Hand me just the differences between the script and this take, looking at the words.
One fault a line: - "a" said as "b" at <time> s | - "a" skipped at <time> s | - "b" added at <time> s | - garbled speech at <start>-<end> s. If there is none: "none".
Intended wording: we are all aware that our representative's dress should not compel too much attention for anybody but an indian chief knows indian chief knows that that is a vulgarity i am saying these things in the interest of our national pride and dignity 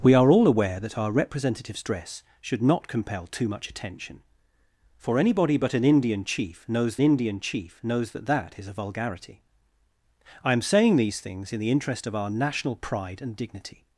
none